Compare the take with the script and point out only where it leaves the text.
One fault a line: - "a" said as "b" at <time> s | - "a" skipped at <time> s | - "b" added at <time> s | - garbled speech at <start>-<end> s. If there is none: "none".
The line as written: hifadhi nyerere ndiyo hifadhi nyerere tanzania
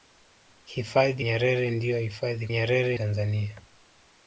none